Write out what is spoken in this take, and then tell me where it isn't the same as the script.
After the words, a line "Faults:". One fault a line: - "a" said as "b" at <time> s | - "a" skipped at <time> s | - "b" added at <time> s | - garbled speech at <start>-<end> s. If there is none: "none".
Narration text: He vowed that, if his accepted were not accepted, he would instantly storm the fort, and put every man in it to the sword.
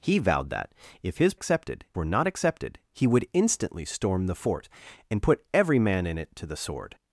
He vowed that, if his accepted were not accepted, he would instantly storm the fort, and put every man in it to the sword.
Faults:
none